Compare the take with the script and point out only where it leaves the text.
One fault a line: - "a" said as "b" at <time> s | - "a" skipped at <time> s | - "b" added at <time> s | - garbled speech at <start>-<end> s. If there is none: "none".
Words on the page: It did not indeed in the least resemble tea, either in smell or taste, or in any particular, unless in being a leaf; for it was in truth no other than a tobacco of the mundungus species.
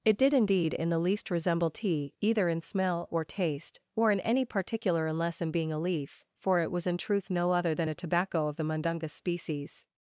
- "not" skipped at 0.3 s